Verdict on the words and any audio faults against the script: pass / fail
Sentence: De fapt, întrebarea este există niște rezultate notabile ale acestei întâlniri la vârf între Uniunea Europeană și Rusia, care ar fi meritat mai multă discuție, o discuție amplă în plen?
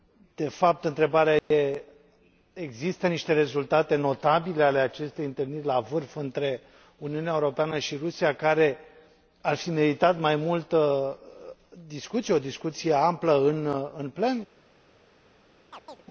fail